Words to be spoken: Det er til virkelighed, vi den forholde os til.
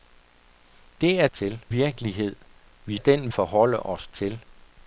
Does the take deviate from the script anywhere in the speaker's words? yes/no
no